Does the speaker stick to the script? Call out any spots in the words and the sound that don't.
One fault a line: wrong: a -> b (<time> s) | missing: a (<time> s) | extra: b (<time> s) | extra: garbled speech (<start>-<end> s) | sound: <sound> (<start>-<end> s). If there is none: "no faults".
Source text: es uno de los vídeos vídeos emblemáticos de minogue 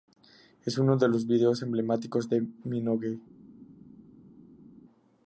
missing: vídeos (1.6 s)